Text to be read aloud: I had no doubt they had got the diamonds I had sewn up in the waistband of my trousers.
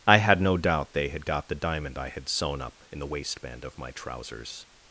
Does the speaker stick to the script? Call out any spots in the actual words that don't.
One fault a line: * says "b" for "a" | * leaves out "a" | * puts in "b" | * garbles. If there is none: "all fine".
* says "diamond" for "diamonds"